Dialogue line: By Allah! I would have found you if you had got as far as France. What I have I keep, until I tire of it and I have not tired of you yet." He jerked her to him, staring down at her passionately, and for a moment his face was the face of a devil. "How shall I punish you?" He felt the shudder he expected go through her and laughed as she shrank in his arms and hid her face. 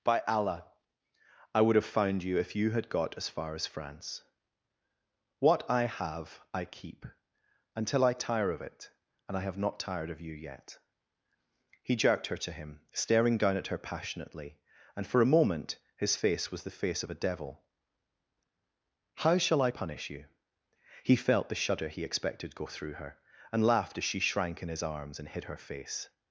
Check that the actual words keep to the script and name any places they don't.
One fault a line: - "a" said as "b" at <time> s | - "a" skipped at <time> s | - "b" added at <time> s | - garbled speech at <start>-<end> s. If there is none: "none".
none